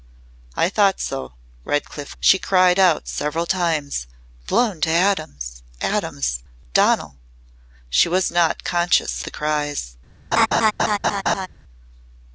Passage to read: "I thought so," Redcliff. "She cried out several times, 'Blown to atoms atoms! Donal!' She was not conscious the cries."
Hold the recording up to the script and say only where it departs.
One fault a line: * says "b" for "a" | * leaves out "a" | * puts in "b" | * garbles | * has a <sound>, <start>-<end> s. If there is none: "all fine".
* has a laugh, 10.3-11.5 s